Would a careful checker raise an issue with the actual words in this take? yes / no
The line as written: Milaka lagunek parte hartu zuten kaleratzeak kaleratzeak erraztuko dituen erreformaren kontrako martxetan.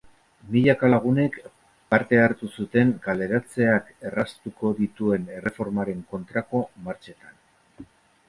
yes